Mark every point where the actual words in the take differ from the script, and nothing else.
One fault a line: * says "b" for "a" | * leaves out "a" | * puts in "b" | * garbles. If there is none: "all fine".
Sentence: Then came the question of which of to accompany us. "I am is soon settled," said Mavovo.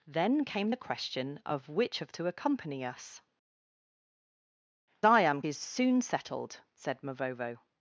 all fine